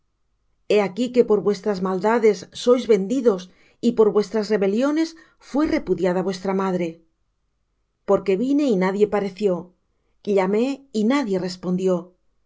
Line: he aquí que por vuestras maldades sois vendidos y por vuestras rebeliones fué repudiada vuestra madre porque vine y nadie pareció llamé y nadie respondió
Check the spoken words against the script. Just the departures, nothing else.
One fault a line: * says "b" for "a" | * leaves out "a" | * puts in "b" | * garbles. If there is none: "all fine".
all fine